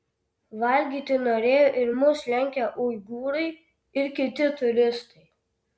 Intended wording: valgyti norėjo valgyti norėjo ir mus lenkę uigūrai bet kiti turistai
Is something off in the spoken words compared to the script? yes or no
yes